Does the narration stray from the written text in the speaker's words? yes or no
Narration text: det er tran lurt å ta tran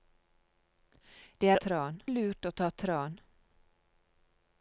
no